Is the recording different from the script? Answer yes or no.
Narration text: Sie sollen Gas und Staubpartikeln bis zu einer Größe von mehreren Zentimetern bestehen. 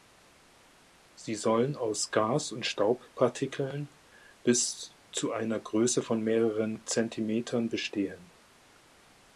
yes